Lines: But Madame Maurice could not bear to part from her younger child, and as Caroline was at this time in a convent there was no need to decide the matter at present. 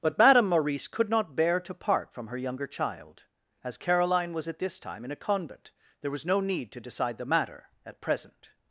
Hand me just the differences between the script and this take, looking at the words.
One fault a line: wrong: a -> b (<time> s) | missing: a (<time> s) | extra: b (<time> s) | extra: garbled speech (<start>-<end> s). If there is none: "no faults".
missing: and (3.2 s)